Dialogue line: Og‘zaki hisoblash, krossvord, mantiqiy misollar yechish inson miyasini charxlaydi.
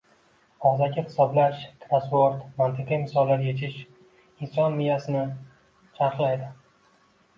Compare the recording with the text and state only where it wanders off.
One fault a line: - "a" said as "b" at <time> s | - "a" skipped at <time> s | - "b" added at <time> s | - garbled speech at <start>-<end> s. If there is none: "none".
none